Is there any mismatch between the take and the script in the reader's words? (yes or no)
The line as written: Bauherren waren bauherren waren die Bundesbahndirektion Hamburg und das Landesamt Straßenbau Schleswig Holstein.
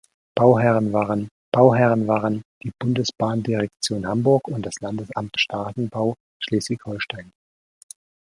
no